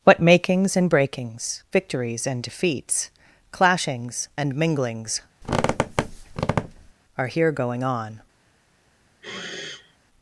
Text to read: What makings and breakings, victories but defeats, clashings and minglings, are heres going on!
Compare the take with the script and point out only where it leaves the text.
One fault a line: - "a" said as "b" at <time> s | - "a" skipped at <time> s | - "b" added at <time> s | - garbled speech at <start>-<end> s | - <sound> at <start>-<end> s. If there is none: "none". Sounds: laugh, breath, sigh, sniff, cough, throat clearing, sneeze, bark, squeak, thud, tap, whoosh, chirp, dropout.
- "but" said as "and" at 2.2 s
- squeak at 5.4-6.9 s
- "heres" said as "here" at 7.3 s
- sniff at 9.2-10.0 s